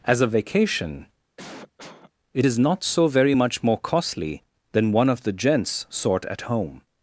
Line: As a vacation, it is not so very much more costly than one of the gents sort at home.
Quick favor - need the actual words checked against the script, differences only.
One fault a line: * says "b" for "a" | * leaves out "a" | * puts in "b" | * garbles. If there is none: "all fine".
all fine